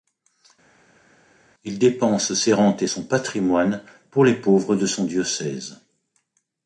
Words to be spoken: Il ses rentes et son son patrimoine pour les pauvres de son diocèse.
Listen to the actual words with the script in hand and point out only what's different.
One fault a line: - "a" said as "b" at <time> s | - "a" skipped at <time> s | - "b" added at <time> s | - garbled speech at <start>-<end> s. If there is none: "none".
- "dépense" added at 1.8 s
- "son" skipped at 3.0 s